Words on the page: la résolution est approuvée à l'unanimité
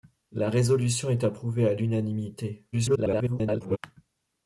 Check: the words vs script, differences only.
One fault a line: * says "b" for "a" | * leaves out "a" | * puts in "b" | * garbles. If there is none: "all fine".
* garbles